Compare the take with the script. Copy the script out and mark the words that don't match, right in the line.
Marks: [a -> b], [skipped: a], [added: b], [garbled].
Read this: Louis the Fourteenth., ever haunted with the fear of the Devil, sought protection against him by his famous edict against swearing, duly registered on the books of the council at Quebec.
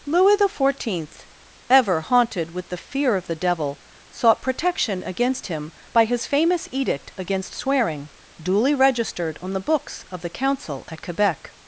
Louis the Fourteenth., ever haunted with the fear of the Devil, sought protection against him by his famous edict against swearing, duly registered on the books of the council at Quebec.